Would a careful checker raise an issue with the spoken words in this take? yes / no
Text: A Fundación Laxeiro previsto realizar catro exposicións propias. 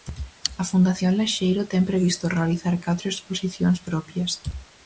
yes